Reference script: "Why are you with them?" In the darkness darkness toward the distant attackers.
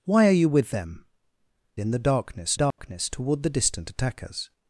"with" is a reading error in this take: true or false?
false